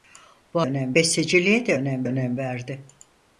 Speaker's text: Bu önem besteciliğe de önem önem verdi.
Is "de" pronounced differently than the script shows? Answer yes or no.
no